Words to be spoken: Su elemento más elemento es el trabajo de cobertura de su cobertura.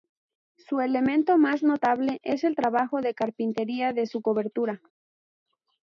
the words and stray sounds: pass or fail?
fail